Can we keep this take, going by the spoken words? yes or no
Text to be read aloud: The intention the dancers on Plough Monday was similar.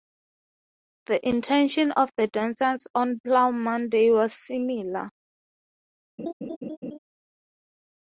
no